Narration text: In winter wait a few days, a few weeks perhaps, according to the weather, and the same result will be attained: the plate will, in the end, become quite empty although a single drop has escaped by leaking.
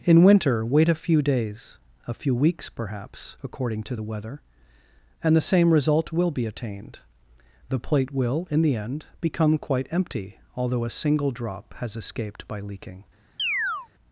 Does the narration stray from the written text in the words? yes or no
no